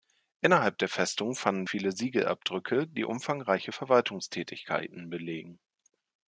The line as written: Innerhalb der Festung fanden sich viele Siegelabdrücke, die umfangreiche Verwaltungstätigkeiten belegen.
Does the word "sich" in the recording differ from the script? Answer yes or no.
yes